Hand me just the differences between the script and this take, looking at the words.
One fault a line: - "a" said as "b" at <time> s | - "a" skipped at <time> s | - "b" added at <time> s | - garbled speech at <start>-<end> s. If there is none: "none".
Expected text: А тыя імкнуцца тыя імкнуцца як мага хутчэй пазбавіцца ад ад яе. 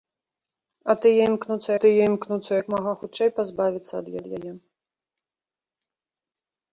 none